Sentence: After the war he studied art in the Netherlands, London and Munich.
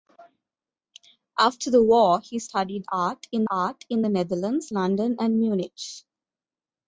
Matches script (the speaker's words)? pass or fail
fail